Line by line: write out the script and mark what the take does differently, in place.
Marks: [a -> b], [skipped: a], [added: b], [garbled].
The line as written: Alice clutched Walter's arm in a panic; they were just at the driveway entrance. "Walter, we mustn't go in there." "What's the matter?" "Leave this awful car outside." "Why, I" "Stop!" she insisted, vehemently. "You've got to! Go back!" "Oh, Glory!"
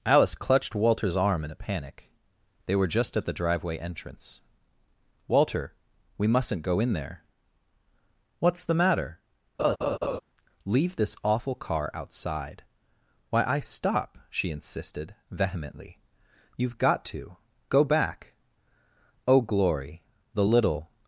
Alice clutched Walter's arm in a panic; they were just at the driveway entrance. "Walter, we mustn't go in there." "What's the matter?" "Leave this awful car outside." "Why, I" "Stop!" she insisted, vehemently. "You've got to! Go back!" "Oh, Glory!" [added: The little]